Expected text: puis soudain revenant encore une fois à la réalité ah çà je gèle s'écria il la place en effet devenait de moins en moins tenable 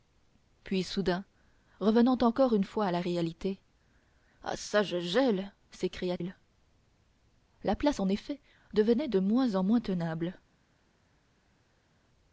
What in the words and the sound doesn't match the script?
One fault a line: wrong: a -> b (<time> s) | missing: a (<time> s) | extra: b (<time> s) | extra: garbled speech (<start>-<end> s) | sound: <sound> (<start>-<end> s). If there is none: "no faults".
no faults